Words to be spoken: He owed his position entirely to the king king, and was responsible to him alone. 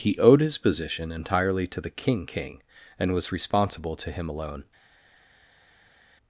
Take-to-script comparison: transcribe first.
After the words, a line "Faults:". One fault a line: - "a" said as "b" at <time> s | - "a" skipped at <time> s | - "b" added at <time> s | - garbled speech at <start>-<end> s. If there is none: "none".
He owed his position entirely to the king king, and was responsible to him alone.
Faults:
none